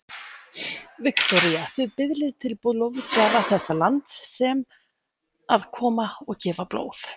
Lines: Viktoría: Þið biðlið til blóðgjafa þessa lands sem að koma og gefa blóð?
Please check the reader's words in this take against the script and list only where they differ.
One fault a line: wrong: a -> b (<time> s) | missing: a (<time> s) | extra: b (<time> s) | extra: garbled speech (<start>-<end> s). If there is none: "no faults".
no faults